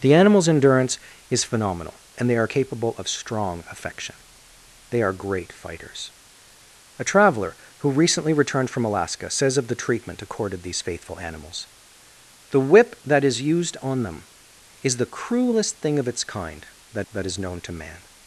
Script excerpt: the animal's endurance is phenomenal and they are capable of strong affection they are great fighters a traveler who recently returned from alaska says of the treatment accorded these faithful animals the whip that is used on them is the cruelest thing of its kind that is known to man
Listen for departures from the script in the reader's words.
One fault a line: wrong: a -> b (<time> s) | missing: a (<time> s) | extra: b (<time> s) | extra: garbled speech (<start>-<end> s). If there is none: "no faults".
extra: that (17.1 s)